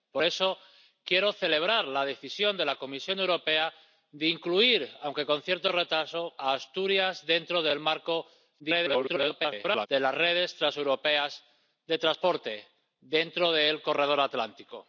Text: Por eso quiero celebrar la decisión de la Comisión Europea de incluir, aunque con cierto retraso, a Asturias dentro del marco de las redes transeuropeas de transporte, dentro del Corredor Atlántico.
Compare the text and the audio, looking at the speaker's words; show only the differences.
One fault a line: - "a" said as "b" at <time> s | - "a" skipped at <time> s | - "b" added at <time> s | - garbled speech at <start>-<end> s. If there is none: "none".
- garbled speech at 8.6-9.9 s